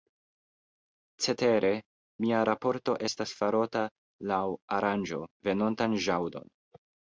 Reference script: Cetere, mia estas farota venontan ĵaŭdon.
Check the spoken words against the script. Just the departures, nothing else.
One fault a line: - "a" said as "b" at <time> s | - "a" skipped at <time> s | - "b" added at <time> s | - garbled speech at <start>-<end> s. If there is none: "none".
- "raporto" added at 2.5 s
- "laŭ aranĝo" added at 4.3 s